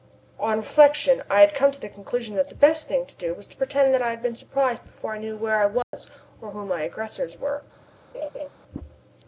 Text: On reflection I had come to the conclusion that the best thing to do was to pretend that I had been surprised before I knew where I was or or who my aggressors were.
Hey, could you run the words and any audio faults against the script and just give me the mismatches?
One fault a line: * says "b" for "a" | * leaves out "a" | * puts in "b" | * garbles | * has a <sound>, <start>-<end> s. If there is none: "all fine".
* has a dropout, 5.8-5.9 s
* leaves out "or"
* has a laugh, 8.1-8.5 s